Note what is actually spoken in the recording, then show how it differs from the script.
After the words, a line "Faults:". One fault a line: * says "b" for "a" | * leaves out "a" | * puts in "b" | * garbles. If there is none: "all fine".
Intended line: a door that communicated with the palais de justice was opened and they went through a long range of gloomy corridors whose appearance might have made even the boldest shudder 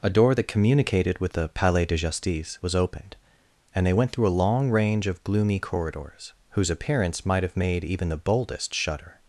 a door that communicated with the palais de justice was opened and they went through a long range of gloomy corridors whose appearance might have made even the boldest shudder
Faults:
all fine